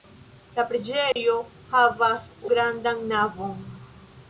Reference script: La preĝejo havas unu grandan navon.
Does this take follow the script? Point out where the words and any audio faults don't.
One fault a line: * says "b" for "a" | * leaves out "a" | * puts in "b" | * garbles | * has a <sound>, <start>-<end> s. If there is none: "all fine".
* has a dropout, 1.1-1.2 s
* leaves out "unu"